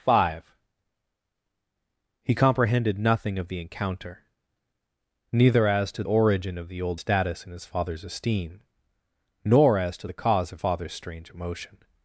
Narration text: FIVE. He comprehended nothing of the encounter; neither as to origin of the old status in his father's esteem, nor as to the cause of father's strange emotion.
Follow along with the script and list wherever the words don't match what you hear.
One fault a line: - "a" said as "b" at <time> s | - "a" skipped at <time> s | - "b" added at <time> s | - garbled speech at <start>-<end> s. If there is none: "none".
none